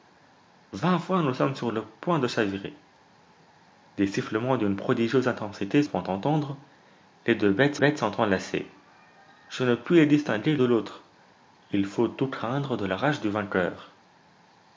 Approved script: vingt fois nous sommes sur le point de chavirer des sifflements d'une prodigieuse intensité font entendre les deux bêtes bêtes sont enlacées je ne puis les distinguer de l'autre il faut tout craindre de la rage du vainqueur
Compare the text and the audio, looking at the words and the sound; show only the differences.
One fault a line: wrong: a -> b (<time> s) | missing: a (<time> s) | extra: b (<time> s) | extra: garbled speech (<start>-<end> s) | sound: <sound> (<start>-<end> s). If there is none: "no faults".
no faults